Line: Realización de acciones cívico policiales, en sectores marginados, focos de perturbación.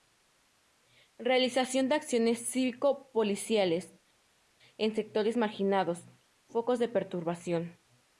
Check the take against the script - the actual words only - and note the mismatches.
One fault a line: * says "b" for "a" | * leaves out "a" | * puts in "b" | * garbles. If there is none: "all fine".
all fine